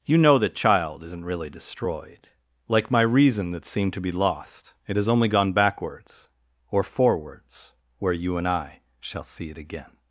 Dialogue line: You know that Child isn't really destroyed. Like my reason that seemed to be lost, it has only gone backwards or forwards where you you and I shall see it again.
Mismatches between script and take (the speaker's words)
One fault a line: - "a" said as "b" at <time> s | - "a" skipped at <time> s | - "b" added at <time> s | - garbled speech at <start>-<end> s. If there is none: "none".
- "you" skipped at 8.3 s